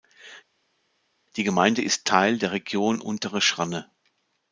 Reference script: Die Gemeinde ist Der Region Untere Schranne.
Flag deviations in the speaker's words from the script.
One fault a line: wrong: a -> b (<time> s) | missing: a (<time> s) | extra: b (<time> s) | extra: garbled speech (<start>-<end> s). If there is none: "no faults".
extra: Teil (2.1 s)